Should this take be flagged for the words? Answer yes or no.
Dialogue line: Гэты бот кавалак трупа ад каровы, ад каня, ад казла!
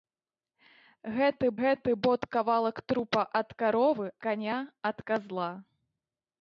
yes